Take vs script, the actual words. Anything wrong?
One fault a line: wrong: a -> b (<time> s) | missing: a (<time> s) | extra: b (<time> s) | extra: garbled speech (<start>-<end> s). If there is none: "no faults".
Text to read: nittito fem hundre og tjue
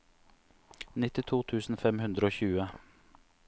extra: tusen (1.5 s)